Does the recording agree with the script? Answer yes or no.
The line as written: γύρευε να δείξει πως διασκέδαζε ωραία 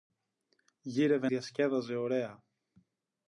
no